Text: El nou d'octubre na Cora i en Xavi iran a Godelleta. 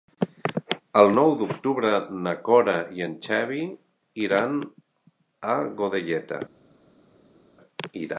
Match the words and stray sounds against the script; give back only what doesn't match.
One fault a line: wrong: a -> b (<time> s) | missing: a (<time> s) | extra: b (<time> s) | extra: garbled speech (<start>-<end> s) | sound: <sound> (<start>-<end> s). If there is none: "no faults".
no faults